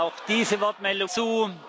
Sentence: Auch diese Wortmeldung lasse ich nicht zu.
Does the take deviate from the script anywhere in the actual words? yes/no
yes